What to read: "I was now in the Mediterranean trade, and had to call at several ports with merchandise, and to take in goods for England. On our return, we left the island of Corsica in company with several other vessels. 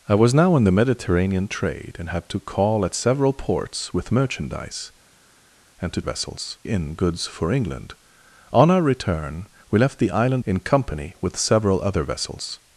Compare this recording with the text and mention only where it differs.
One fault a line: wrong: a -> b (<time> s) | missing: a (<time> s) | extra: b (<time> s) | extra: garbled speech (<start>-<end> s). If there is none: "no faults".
wrong: take -> vessels (6.0 s)
missing: of Corsica (10.4 s)